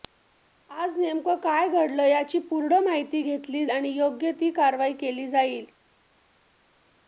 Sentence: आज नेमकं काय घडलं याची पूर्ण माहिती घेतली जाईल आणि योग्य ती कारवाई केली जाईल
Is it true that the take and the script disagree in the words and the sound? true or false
true